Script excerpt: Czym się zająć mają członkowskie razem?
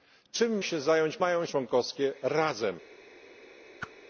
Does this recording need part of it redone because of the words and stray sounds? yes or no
yes